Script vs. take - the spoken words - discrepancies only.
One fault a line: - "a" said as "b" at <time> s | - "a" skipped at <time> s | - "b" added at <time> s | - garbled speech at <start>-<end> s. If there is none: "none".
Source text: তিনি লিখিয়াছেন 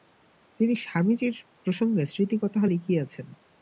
- "স্বামীজীর প্রসঙ্গে স্মৃতিকথা" added at 0.8 s